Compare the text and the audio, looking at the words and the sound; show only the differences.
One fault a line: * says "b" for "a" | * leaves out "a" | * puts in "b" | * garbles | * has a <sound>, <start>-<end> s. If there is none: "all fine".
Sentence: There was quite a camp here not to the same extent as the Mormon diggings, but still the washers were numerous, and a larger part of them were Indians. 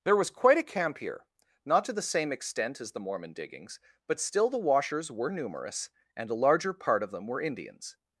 all fine